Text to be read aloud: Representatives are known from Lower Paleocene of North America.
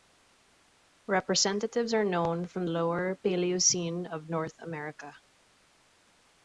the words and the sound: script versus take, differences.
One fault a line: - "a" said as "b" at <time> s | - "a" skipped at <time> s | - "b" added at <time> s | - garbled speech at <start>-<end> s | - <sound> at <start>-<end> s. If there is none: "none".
none